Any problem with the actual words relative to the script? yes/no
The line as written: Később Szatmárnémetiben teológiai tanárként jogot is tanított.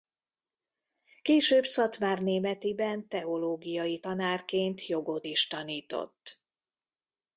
no